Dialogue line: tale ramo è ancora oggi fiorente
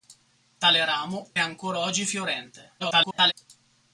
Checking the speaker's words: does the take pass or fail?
fail